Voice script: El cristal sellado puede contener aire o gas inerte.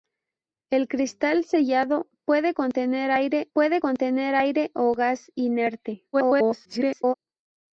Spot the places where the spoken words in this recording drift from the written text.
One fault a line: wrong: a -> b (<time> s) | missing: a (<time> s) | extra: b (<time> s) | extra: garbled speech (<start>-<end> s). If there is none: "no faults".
extra: puede contener aire (3.5 s)
extra: garbled speech (6.1-7.1 s)